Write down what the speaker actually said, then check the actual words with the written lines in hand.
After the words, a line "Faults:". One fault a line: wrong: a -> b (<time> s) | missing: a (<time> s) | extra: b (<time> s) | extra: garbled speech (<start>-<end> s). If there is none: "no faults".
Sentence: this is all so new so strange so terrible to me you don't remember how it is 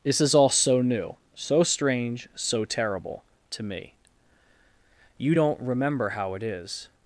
this is all so new so strange so terrible to me you don't remember how it is
Faults:
no faults